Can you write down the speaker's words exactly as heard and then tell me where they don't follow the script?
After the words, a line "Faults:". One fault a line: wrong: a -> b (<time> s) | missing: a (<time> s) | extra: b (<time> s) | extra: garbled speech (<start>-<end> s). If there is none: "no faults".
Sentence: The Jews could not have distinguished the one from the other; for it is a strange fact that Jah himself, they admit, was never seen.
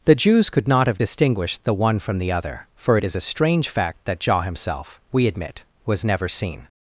The Jews could not have distinguished the one from the other; for it is a strange fact that Jah himself, we admit, was never seen.
Faults:
wrong: they -> we (5.1 s)